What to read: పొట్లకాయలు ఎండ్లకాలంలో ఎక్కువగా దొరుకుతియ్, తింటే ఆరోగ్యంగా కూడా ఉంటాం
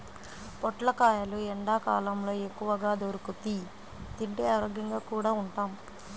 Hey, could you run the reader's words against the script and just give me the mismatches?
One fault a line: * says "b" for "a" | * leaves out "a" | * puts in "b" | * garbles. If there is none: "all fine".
all fine